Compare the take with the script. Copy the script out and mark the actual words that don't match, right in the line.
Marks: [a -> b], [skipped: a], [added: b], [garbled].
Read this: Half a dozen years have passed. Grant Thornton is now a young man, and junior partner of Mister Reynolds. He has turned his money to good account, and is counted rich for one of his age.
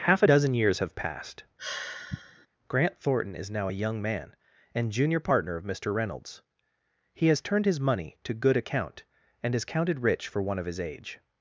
Half a dozen years have passed. Grant Thornton is now a young man, and junior partner of Mister Reynolds. He has turned his money to good account, and is counted rich for one of his age.